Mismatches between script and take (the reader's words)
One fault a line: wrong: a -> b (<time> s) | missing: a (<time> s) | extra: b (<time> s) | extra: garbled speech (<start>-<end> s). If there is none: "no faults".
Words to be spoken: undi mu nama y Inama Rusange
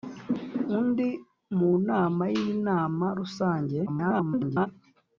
extra: garbled speech (3.9-4.7 s)